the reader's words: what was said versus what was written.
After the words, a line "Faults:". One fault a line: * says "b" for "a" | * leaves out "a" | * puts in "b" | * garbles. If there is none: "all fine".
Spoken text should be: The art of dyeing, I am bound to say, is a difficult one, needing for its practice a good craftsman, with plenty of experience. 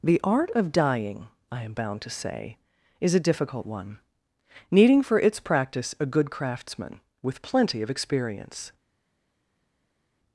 The art of dyeing, I am bound to say, is a difficult one, needing for its practice a good craftsman, with plenty of experience.
Faults:
all fine